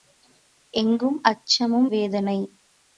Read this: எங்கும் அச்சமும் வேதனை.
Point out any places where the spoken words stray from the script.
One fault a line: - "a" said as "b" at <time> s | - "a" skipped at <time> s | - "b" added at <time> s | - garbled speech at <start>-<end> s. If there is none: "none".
none